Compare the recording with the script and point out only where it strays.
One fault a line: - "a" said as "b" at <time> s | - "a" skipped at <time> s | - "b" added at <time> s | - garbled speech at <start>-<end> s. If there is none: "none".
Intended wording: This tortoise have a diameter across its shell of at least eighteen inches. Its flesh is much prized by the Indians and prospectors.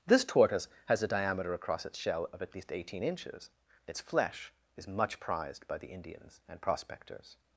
- "have" said as "has" at 0.9 s